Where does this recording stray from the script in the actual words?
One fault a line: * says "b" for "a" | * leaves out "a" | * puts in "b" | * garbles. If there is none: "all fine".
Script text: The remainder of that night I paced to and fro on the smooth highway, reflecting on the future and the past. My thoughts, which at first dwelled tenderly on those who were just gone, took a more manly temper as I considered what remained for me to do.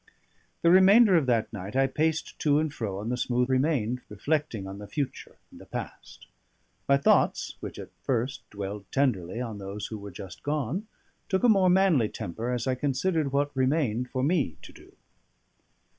* says "remained" for "highway"